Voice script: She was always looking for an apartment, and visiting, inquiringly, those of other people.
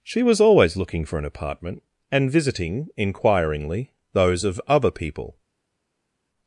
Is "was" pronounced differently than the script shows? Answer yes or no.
no